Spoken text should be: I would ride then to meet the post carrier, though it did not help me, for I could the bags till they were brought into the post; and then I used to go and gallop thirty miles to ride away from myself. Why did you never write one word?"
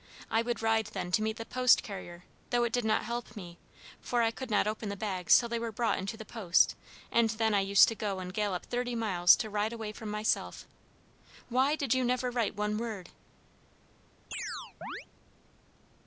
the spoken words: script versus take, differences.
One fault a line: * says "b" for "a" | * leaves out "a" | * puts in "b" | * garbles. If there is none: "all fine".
* puts in "not open"